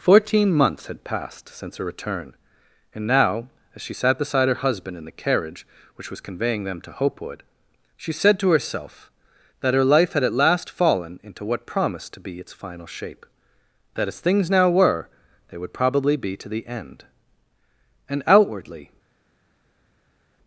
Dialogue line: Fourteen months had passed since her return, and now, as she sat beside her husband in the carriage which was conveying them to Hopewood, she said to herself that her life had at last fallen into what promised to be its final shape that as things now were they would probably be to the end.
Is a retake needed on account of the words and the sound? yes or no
yes